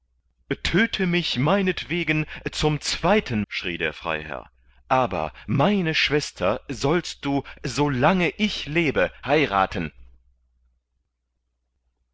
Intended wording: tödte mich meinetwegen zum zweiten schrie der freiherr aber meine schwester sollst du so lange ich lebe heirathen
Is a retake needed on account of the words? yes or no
no